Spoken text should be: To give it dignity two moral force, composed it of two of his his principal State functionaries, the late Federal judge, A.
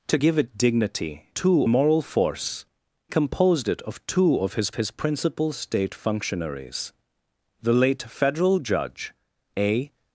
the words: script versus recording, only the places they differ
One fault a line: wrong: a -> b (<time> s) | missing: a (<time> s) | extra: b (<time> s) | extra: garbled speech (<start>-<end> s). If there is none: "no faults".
no faults